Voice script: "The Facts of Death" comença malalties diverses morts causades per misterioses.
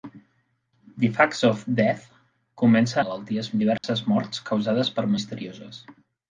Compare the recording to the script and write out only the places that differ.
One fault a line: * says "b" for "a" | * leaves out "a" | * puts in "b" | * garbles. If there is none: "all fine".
all fine